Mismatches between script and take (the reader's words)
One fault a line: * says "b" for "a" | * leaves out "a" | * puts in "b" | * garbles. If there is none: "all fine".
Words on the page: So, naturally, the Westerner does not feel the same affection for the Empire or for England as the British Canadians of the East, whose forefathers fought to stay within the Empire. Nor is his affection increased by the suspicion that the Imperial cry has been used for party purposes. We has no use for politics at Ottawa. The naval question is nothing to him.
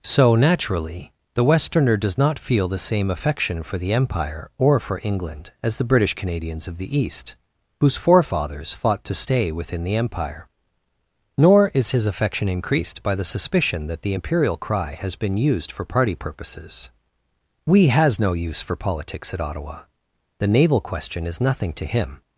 all fine